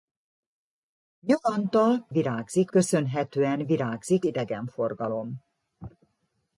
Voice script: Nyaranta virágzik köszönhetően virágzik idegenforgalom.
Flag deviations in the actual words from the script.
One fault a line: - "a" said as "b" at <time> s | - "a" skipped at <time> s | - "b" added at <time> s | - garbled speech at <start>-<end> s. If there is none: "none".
none